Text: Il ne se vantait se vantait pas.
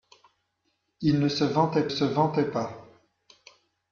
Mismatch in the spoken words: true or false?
false